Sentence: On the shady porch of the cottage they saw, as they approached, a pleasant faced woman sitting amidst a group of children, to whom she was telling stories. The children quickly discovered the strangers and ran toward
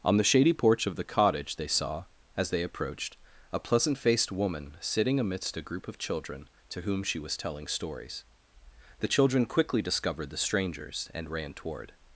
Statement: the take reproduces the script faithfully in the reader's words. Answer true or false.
true